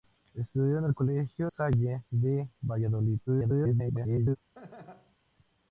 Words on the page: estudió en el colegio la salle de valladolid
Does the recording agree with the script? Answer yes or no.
no